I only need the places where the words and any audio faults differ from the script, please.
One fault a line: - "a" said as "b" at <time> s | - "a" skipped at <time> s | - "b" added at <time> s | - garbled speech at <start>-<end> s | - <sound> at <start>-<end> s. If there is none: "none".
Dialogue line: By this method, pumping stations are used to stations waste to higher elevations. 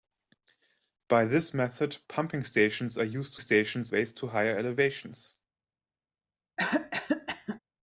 - cough at 6.6-7.6 s